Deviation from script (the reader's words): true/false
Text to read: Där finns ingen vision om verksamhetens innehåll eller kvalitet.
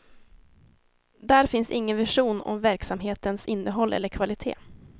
false